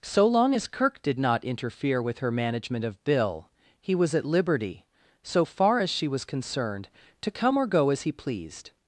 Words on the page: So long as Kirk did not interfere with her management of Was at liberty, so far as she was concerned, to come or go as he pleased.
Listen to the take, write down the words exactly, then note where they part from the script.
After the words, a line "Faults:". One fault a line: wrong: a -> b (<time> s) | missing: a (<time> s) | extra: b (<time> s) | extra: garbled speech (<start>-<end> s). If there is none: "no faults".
So long as Kirk did not interfere with her management of Bill, he was at liberty, so far as she was concerned, to come or go as he pleased.
Faults:
extra: Bill he (3.0 s)